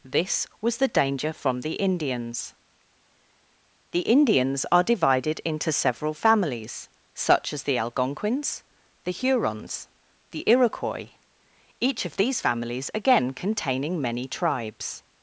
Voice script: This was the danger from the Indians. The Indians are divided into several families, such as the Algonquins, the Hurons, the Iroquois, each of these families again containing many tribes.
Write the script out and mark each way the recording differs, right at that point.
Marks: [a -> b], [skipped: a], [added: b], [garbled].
This was the danger from the Indians. The Indians are divided into several families, such as the Algonquins, the Hurons, the Iroquois, each of these families again containing many tribes.